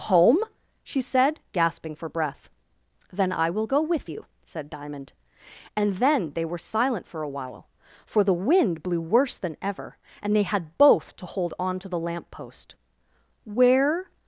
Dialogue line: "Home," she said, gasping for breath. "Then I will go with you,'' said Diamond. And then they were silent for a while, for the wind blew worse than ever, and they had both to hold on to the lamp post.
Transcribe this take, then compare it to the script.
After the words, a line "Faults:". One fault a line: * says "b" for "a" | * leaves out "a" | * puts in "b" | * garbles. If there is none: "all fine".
"Home," she said, gasping for breath. "Then I will go with you,'' said Diamond. And then they were silent for a while, for the wind blew worse than ever, and they had both to hold on to the lamp post. "Where
Faults:
* puts in "Where"